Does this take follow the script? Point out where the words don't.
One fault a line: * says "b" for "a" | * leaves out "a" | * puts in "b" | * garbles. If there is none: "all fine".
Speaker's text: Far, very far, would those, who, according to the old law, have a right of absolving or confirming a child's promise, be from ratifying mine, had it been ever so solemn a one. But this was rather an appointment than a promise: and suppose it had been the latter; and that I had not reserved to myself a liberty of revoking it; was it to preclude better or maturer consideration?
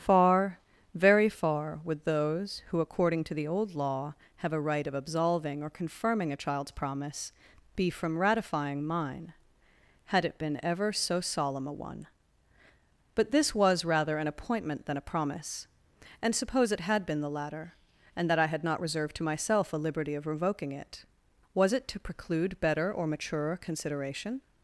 all fine